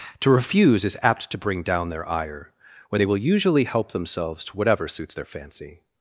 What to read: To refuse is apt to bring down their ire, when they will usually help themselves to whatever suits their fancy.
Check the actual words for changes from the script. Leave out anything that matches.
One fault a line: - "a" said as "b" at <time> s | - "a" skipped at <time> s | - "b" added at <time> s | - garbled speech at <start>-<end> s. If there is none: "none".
none